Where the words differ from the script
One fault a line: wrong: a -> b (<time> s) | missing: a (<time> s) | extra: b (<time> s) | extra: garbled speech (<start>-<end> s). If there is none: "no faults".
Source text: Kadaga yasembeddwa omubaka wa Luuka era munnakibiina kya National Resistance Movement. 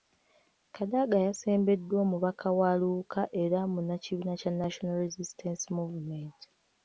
no faults